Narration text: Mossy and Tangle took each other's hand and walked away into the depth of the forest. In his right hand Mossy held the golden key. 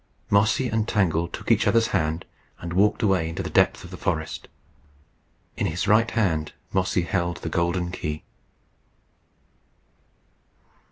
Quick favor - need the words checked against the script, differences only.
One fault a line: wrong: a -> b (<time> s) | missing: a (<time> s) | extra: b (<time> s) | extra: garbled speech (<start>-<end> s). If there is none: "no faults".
no faults